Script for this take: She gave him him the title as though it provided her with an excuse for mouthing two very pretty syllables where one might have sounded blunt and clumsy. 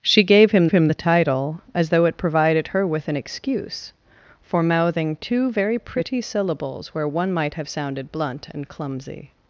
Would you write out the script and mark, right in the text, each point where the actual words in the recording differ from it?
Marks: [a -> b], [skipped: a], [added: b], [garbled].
She gave him him the title as though it provided her with an excuse for mouthing two very pretty syllables where one might have sounded blunt and clumsy.